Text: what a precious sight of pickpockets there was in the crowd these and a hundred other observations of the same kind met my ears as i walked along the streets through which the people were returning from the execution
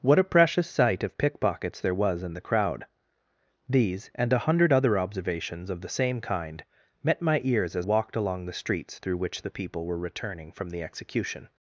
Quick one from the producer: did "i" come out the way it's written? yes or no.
no